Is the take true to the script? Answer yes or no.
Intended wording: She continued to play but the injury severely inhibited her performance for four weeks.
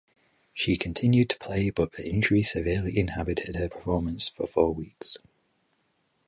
yes